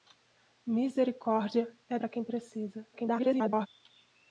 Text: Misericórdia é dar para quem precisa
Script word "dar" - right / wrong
wrong